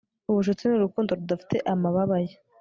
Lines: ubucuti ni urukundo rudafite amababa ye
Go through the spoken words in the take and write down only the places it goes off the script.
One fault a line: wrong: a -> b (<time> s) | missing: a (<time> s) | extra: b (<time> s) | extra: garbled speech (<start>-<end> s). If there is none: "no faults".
no faults